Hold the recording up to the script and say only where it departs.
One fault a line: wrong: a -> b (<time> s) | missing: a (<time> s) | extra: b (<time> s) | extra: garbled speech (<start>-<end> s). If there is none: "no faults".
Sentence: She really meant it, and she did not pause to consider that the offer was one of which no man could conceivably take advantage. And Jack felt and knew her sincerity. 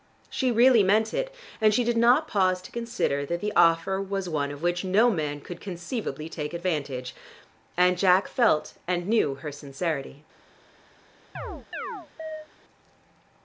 no faults